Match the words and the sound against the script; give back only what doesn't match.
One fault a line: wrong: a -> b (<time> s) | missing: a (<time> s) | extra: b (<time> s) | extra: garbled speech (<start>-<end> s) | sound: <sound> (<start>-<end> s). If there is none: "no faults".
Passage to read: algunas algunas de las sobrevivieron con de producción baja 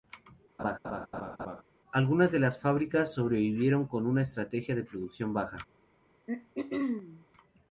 sound: laugh (0.6-1.6 s)
missing: algunas (2.3 s)
extra: fábricas (2.6 s)
extra: una estrategia (4.1 s)
sound: throat clearing (6.3-7.3 s)